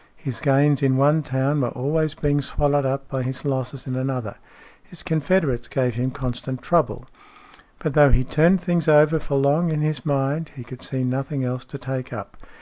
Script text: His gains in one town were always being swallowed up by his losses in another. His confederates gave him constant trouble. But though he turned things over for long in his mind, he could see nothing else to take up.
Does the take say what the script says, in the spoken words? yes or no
yes